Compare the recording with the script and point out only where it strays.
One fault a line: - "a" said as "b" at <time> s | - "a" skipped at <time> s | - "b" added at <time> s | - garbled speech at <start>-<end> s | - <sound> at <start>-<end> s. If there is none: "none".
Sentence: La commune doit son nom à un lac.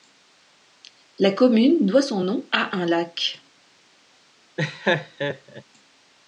- laugh at 4.6-5.6 s